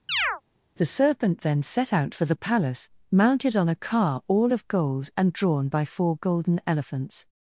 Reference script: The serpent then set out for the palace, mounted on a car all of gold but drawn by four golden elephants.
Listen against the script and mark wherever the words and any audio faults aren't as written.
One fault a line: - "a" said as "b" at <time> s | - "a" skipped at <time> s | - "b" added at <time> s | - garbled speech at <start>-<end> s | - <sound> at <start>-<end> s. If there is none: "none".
- chirp at 0.1-0.4 s
- "but" said as "and" at 5.2 s